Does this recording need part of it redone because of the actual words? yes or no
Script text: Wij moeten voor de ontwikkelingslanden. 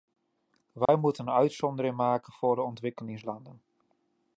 yes